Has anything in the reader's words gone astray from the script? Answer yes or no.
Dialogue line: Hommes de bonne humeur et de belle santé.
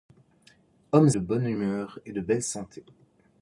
no